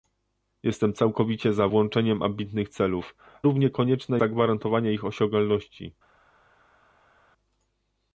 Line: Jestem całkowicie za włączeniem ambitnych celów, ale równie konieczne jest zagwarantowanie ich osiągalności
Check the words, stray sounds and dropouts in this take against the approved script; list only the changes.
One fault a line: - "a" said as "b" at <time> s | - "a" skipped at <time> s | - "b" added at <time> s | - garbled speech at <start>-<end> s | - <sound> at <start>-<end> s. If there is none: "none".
- "ale" skipped at 3.1 s
- "jest" skipped at 4.2 s